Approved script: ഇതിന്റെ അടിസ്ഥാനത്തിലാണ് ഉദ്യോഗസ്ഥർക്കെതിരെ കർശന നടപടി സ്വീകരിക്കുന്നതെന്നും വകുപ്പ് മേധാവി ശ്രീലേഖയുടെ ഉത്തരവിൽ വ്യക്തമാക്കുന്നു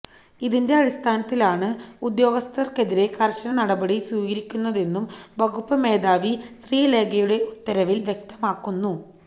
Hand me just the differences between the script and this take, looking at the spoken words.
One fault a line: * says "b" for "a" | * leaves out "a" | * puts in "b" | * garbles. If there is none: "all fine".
all fine